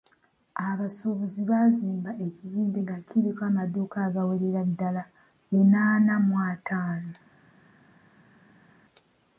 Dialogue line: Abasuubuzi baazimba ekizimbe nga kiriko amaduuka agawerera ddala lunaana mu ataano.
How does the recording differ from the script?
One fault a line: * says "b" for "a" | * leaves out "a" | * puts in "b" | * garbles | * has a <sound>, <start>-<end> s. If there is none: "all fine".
all fine